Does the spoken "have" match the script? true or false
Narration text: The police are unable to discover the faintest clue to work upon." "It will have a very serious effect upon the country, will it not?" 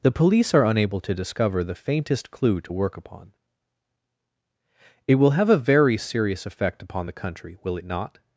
true